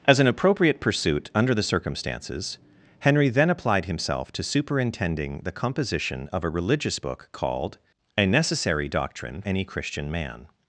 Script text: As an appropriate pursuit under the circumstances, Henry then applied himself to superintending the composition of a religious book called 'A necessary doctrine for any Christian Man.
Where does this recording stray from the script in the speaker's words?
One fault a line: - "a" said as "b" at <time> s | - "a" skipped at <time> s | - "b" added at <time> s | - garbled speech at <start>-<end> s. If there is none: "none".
- "for" skipped at 9.4 s